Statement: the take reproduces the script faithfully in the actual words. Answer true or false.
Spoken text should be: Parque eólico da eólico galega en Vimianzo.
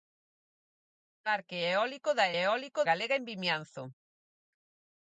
true